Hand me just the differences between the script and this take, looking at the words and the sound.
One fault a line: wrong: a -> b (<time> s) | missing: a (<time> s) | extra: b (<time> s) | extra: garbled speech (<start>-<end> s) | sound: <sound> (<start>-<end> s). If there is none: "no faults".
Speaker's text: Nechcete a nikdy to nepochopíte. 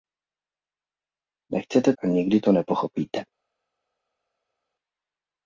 no faults